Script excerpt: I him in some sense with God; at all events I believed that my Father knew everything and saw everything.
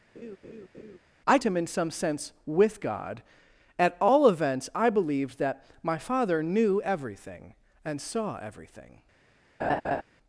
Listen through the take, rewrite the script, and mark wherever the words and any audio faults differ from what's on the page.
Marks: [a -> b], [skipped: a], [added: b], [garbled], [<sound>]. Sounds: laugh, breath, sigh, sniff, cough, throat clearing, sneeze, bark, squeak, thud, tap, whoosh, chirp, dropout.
[laugh] I him in some sense with God; at all events I believed that my Father knew everything and saw everything. [laugh]